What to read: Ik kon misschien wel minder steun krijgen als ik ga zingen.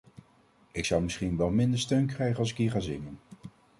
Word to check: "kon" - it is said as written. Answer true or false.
false